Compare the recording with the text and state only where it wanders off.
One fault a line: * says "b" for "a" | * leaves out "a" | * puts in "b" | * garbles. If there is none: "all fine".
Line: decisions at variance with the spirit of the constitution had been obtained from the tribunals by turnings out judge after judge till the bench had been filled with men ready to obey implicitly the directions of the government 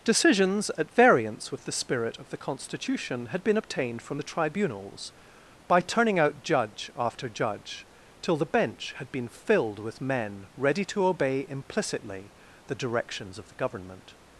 * says "turning" for "turnings"